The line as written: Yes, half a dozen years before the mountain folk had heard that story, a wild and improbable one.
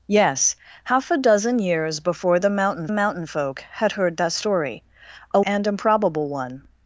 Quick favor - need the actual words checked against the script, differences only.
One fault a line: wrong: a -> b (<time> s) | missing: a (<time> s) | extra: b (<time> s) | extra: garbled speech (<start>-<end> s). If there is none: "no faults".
extra: mountain (2.9 s)
missing: wild (5.4 s)